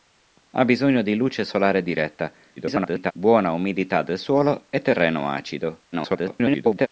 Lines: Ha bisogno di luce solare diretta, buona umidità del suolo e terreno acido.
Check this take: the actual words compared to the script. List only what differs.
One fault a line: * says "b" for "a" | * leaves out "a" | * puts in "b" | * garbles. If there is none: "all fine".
* garbles
* garbles